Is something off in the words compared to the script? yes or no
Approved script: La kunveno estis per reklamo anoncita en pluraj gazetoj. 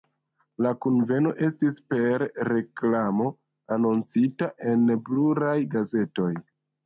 no